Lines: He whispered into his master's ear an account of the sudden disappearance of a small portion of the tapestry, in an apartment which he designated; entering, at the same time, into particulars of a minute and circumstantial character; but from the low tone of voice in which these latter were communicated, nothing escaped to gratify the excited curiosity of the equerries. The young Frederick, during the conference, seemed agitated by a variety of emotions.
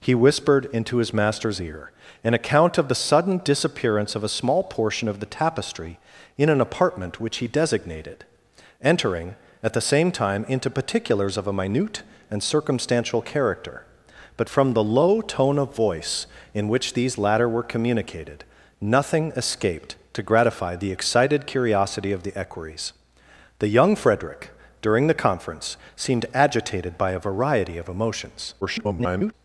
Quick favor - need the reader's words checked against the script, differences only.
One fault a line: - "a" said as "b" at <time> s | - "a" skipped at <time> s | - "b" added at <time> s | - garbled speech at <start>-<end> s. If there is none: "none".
- garbled speech at 28.6-29.3 s